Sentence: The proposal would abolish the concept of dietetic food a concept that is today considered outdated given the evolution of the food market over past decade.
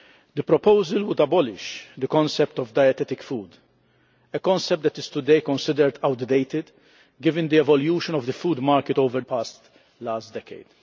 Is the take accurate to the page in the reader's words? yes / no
yes